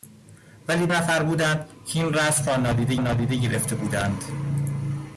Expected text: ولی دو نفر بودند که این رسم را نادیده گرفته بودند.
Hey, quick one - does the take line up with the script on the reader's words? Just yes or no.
no